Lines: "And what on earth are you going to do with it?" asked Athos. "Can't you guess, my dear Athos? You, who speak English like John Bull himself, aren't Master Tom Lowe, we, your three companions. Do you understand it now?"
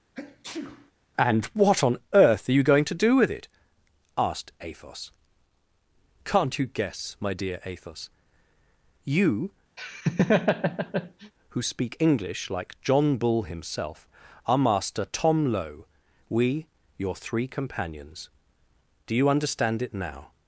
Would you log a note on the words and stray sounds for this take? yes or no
yes